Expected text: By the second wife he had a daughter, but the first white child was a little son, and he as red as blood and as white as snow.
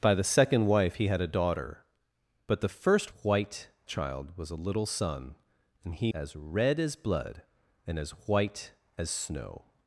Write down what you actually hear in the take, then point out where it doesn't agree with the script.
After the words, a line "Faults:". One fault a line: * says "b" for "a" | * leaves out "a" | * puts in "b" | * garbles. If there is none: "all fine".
By the second wife he had a daughter, but the first white child was a little son, and he as red as blood and as white as snow.
Faults:
all fine